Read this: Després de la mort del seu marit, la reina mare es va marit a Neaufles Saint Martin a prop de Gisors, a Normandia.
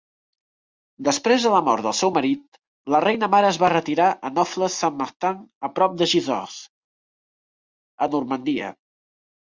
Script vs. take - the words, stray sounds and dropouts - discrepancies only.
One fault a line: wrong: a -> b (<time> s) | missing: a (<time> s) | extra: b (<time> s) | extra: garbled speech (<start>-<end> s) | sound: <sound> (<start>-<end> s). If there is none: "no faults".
wrong: marit -> retirar (3.8 s)